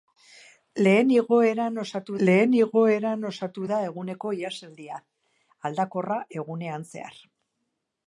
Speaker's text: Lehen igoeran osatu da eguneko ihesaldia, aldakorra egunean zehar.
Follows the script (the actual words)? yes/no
no